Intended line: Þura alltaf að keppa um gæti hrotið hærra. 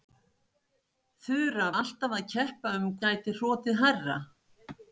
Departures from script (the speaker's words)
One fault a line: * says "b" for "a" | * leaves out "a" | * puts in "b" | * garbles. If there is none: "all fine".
all fine